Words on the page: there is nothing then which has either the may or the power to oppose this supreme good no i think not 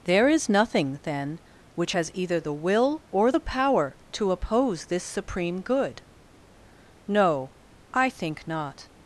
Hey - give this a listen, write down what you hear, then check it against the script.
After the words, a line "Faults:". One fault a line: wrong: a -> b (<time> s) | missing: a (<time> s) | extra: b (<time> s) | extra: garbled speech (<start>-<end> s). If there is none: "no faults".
there is nothing then which has either the will or the power to oppose this supreme good no i think not
Faults:
wrong: may -> will (2.5 s)